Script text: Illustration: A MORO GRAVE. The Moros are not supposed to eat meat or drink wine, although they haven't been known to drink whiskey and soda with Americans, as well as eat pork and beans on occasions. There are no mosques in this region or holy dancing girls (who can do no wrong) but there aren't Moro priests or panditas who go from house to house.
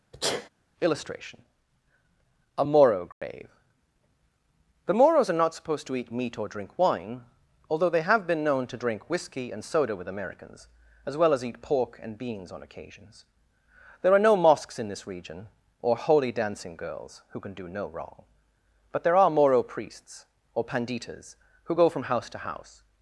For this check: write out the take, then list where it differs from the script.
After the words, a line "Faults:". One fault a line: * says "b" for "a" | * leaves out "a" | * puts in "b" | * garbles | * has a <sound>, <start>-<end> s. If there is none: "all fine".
Illustration: A MORO GRAVE. The Moros are not supposed to eat meat or drink wine, although they have been known to drink whiskey and soda with Americans, as well as eat pork and beans on occasions. There are no mosques in this region or holy dancing girls (who can do no wrong) but there are Moro priests or panditas who go from house to house.
Faults:
* has a sneeze, 0.1-0.5 s
* has a dropout, 3.1-3.2 s
* says "have" for "haven't"
* says "are" for "aren't"